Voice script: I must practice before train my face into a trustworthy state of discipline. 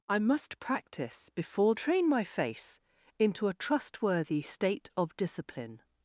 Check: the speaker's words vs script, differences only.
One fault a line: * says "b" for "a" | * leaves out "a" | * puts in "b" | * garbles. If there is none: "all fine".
all fine